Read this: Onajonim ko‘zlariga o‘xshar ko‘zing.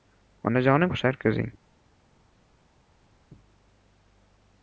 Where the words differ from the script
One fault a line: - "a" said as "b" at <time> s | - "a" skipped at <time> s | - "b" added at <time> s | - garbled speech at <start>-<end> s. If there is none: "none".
- "ko‘zlariga" skipped at 0.9 s